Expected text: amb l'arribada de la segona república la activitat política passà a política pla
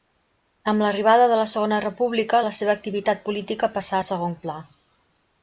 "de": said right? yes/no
yes